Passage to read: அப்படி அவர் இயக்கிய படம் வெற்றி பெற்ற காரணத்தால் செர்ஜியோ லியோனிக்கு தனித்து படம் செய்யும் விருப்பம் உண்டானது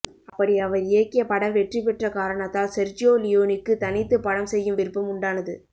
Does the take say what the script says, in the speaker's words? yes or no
yes